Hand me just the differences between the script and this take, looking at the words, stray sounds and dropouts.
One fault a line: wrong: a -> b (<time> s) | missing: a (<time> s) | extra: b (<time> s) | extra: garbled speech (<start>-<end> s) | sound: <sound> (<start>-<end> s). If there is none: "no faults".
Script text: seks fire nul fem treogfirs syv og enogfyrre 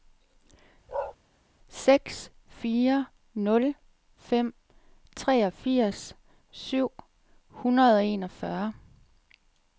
sound: bark (0.9-1.2 s)
extra: hundrede (7.5 s)